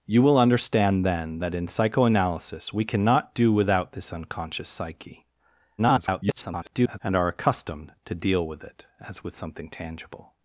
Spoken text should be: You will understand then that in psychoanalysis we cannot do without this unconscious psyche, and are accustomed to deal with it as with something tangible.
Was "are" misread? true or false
false